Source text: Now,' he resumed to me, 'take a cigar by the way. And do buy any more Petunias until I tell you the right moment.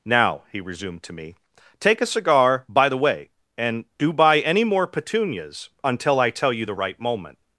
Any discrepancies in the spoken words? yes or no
no